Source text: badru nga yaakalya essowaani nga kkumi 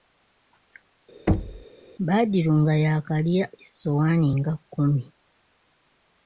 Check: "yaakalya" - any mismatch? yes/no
no